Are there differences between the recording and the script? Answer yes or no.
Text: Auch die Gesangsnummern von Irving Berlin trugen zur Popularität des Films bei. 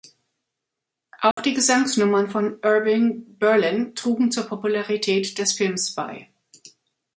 no